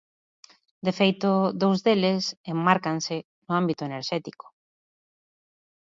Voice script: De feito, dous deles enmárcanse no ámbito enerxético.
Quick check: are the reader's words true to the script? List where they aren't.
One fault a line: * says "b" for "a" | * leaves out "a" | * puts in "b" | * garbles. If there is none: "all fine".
all fine